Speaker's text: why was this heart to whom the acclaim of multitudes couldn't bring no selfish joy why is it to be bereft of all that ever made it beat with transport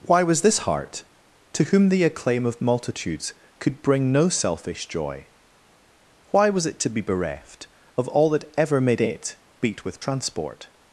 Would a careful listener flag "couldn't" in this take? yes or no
yes